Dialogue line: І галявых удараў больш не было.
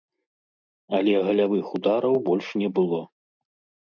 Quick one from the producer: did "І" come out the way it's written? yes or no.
no